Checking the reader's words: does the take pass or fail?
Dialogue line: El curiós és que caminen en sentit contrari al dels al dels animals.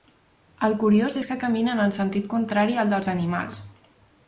fail